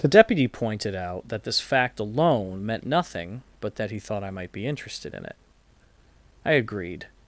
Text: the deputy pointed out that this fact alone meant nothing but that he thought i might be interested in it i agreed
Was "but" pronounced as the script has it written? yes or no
yes